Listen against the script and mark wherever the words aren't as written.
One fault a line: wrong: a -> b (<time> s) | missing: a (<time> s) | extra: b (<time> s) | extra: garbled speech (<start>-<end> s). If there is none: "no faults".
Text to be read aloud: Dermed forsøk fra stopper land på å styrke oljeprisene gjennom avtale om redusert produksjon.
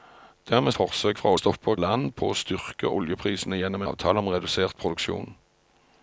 no faults